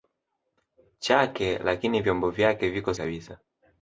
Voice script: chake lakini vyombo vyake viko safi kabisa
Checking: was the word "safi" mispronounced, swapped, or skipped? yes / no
yes